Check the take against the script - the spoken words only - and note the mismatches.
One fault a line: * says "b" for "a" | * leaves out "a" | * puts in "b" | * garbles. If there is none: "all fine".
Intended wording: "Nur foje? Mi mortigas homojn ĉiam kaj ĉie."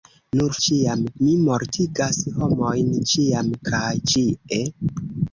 * says "ĉiam" for "foje"